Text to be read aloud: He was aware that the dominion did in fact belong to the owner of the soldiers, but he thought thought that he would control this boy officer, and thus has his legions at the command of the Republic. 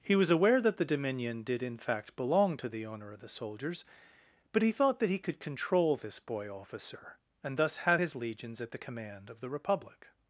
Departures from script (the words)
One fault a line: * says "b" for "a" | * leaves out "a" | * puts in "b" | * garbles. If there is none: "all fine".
* leaves out "thought"
* says "could" for "would"
* says "have" for "has"